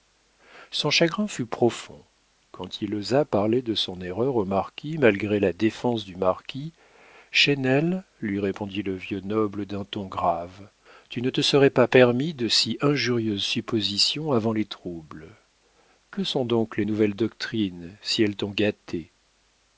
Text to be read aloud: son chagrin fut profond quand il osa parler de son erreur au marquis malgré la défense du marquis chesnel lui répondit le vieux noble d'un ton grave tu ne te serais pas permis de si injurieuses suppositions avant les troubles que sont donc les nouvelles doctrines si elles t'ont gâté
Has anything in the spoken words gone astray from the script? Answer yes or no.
no